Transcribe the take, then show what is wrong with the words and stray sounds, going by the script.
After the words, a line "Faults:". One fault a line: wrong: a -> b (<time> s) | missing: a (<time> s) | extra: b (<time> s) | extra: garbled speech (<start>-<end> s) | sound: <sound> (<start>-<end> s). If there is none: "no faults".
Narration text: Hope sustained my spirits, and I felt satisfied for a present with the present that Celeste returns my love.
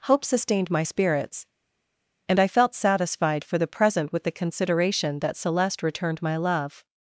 Hope sustained my spirits, and I felt satisfied for the present with the consideration that Celeste returned my love.
Faults:
wrong: a -> the (3.6 s)
wrong: present -> consideration (4.3 s)
wrong: returns -> returned (5.8 s)